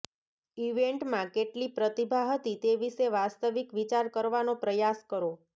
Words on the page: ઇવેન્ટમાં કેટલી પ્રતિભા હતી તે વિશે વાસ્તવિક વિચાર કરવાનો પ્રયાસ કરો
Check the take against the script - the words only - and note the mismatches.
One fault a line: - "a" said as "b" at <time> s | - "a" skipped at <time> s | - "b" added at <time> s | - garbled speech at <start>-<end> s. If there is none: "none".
none